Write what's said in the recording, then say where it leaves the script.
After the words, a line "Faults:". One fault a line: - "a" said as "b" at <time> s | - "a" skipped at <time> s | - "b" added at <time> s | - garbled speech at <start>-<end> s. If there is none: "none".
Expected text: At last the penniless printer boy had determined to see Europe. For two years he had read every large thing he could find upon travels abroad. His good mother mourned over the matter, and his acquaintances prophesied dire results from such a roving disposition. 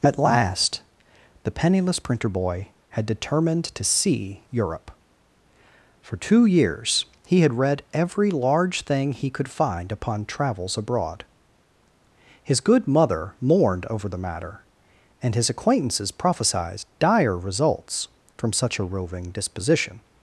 At last the penniless printer boy had determined to see Europe. For two years he had read every large thing he could find upon travels abroad. His good mother mourned over the matter, and his acquaintances prophesied dire results from such a roving disposition.
Faults:
none